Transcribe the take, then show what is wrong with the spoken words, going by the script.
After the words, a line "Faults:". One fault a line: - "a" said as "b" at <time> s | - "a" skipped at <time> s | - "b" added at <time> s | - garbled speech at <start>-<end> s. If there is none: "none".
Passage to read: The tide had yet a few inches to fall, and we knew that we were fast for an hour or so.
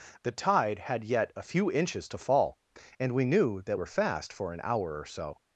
The tide had yet a few inches to fall, and we knew that were fast for an hour or so.
Faults:
- "we" skipped at 3.8 s